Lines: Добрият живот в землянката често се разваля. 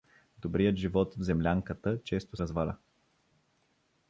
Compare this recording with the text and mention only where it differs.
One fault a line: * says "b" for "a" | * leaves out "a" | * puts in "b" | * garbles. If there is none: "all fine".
* leaves out "се"